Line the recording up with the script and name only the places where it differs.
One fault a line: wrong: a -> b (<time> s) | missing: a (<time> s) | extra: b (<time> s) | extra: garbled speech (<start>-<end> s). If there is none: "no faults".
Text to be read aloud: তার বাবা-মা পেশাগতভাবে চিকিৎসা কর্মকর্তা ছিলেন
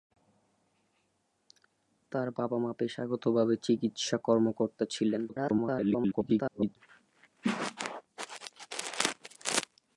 extra: garbled speech (5.3-6.8 s)